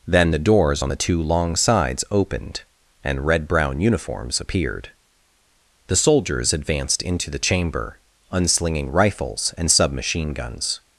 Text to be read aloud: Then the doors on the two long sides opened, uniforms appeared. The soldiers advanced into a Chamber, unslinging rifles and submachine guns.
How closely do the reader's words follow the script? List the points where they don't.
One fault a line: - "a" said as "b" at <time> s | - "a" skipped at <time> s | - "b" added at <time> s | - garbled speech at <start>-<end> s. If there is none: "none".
- "and red brown" added at 3.0 s
- "a" said as "the" at 7.3 s